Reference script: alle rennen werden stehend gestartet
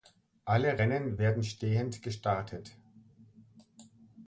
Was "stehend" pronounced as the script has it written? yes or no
yes